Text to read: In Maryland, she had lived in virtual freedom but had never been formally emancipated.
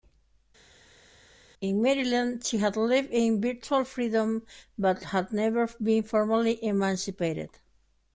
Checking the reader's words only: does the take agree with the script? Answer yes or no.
yes